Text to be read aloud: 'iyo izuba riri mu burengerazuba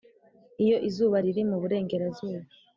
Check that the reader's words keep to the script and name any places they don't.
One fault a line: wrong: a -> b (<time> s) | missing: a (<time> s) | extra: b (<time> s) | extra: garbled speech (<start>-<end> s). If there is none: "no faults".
no faults